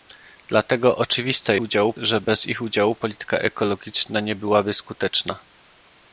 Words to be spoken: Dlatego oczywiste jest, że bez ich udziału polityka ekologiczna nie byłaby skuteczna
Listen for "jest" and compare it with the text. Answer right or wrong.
wrong